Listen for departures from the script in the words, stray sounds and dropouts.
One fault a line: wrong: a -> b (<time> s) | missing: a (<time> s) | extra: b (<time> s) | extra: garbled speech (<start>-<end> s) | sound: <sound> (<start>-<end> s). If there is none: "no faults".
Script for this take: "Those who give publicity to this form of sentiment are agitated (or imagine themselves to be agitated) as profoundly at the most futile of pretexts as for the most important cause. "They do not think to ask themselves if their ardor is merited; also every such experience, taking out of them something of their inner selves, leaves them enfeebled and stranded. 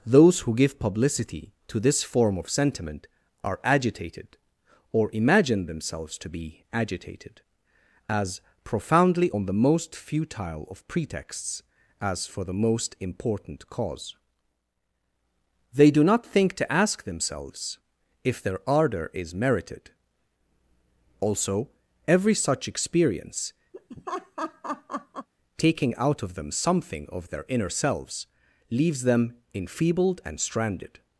wrong: at -> on (9.3 s)
sound: laugh (23.7-25.3 s)